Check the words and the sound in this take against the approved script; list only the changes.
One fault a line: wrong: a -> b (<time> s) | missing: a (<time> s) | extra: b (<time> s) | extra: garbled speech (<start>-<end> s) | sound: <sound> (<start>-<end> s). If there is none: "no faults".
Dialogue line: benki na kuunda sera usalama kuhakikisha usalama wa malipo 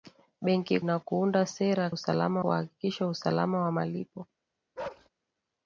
sound: bark (4.8-5.1 s)